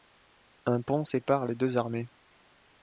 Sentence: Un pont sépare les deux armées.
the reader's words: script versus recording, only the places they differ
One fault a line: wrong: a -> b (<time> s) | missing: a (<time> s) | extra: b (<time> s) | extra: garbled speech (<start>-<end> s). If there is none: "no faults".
no faults